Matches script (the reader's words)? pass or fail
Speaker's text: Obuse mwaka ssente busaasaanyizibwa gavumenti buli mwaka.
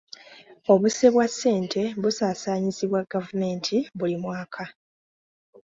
fail